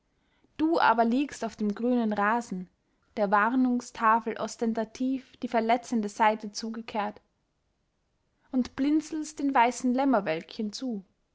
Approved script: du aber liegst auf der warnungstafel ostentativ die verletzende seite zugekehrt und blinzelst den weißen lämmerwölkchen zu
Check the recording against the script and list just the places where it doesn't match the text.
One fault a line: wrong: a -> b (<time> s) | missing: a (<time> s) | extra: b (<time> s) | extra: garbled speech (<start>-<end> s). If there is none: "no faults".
extra: dem grünen rasen (1.6 s)